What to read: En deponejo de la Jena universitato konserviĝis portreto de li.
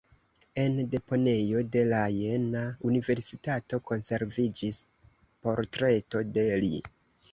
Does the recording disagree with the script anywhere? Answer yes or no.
no